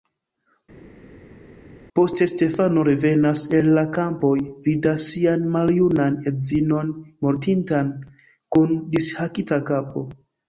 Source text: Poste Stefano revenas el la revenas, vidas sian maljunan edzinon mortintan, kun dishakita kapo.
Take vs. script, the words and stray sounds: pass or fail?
fail